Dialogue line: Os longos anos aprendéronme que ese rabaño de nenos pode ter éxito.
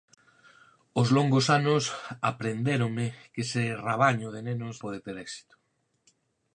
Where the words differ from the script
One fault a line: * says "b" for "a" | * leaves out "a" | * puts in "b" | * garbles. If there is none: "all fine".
all fine